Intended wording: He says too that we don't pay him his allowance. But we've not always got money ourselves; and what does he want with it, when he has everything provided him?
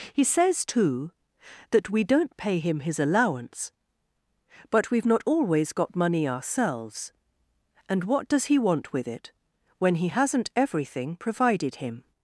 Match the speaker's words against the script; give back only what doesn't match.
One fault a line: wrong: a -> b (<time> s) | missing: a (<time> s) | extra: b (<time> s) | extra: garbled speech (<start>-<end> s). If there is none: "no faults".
wrong: has -> hasn't (10.1 s)